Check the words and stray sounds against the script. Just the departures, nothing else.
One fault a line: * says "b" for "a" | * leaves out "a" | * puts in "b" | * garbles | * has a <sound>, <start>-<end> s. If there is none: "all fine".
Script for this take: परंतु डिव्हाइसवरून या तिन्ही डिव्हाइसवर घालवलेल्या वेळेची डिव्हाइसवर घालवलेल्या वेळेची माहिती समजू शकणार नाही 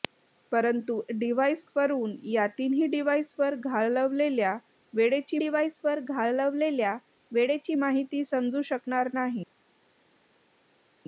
all fine